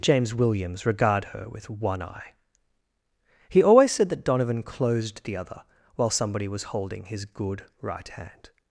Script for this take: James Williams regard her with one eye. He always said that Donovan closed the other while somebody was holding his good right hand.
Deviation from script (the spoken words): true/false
false